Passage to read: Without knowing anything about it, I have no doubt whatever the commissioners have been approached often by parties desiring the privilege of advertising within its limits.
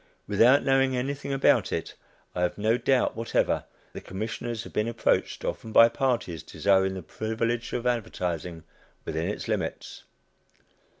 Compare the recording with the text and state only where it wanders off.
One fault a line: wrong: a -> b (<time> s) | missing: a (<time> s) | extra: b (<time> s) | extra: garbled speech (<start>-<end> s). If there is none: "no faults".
no faults